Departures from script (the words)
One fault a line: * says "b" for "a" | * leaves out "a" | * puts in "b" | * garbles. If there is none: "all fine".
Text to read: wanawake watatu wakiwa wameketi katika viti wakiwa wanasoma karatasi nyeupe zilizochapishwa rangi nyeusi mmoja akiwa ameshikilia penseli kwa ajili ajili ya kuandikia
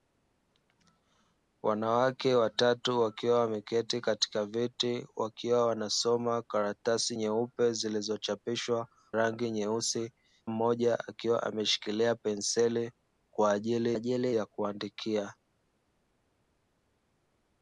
all fine